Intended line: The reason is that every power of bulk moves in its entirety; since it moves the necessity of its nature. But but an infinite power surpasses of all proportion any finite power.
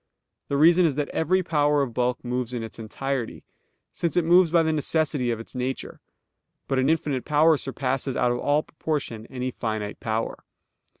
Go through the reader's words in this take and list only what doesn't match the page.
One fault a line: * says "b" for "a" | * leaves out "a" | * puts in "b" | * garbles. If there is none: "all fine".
* puts in "by"
* leaves out "but"
* puts in "out"